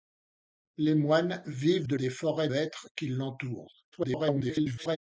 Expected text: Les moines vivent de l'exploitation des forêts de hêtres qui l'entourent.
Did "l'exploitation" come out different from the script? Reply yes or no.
yes